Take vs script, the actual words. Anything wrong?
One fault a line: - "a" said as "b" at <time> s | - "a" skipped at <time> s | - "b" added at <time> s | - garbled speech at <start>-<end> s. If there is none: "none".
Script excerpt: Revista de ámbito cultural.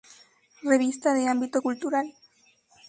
none